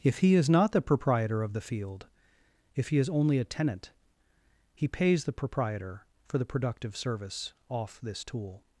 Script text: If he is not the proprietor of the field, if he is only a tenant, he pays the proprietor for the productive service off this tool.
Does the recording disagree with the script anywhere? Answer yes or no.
no